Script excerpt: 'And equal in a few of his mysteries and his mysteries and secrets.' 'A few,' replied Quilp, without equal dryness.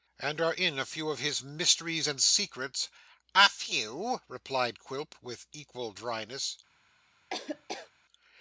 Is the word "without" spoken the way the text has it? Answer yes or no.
no